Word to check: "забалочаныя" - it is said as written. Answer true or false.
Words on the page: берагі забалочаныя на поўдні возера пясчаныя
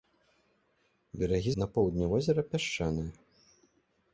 false